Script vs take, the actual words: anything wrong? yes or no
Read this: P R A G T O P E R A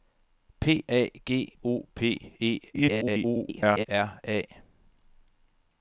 yes